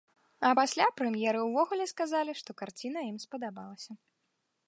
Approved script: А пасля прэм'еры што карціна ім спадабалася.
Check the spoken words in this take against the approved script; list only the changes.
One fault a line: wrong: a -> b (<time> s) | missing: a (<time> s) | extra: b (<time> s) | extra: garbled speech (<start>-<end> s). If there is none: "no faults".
extra: ўвогуле сказалі (1.5 s)